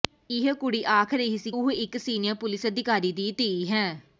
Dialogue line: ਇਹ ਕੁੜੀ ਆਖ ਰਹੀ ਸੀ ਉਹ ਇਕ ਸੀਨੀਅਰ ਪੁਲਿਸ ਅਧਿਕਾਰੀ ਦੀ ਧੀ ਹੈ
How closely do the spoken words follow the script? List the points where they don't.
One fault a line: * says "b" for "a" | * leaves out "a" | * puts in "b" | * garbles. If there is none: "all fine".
all fine